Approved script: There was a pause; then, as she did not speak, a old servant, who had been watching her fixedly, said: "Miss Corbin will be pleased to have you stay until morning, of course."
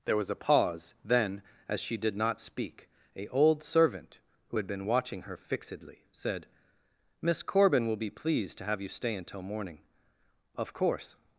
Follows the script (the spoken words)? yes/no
yes